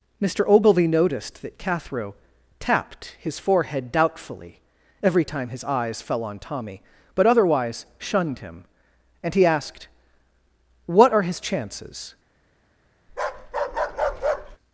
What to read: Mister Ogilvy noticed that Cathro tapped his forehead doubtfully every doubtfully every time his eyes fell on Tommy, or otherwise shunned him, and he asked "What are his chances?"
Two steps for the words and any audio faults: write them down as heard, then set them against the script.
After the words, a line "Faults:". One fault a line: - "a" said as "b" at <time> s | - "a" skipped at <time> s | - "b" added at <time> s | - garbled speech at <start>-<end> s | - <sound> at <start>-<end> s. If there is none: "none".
Mister Ogilvy noticed that Cathro tapped his forehead doubtfully every time his eyes fell on Tommy, but otherwise shunned him, and he asked "What are his chances?"
Faults:
- "doubtfully every" skipped at 5.2 s
- "or" said as "but" at 7.1 s
- bark at 13.1-14.6 s